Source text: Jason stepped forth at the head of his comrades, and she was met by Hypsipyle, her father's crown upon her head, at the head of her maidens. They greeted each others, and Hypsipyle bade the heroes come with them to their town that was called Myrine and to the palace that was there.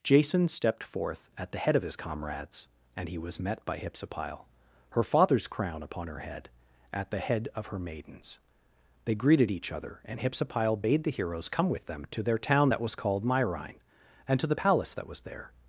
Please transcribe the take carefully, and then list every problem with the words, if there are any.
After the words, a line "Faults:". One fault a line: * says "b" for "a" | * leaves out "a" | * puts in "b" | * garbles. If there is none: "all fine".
Jason stepped forth at the head of his comrades, and he was met by Hypsipyle, her father's crown upon her head, at the head of her maidens. They greeted each other, and Hypsipyle bade the heroes come with them to their town that was called Myrine and to the palace that was there.
Faults:
* says "he" for "she"
* says "other" for "others"